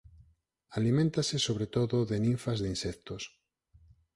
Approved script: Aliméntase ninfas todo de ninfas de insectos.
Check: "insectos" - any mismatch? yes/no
no